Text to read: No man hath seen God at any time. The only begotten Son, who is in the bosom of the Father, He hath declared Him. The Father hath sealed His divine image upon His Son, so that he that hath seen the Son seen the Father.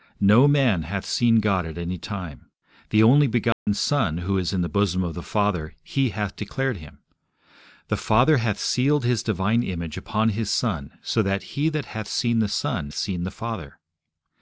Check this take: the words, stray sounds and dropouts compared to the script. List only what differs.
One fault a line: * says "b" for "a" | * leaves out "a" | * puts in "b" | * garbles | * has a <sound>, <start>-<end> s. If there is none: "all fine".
* has a dropout, 3.5-3.7 s